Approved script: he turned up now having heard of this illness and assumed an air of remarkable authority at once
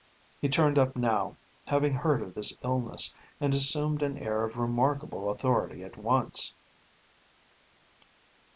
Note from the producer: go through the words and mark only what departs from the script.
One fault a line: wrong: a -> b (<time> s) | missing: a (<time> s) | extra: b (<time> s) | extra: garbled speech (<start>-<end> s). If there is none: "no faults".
no faults